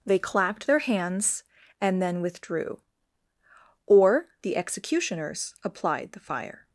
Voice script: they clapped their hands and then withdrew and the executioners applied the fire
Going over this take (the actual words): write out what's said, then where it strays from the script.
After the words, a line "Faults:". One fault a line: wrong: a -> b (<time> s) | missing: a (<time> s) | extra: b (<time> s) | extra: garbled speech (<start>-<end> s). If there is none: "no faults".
they clapped their hands and then withdrew or the executioners applied the fire
Faults:
wrong: and -> or (3.9 s)